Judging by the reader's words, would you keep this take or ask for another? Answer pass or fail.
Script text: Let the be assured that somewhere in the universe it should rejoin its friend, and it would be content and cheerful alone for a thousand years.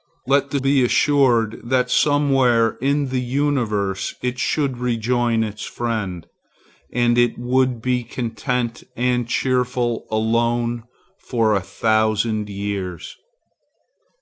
pass